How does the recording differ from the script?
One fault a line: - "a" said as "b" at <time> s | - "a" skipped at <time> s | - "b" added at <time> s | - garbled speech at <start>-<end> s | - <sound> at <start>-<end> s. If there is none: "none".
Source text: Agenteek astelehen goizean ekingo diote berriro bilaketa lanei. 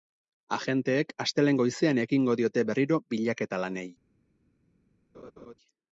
- laugh at 5.1-5.5 s